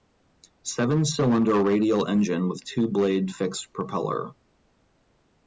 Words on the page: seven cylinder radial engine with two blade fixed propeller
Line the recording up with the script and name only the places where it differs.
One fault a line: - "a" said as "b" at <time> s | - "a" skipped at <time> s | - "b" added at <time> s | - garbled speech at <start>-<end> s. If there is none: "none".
none